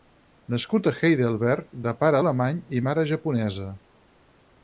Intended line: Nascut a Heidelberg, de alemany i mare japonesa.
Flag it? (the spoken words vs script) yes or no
yes